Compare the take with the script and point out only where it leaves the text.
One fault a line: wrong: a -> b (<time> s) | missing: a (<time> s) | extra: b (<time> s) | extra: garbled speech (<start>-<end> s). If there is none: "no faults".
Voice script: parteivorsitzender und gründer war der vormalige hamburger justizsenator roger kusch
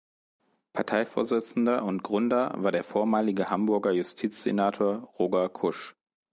no faults